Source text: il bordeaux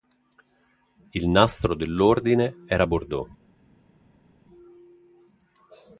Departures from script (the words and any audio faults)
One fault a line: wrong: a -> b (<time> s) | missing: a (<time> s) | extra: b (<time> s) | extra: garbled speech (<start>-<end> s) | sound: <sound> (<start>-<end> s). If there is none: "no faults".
extra: nastro dell'ordine era (1.3 s)